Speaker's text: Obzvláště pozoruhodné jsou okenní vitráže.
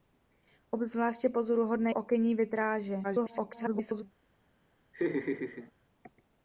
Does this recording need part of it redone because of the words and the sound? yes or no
yes